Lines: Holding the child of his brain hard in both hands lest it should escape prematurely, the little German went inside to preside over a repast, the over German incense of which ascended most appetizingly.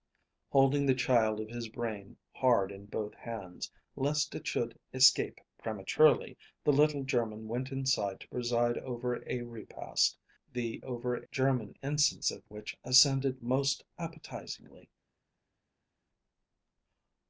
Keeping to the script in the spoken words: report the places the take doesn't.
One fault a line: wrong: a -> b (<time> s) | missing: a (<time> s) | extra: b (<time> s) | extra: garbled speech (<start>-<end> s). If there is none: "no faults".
no faults